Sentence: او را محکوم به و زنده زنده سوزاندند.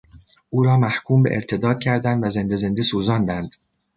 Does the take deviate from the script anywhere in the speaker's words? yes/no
yes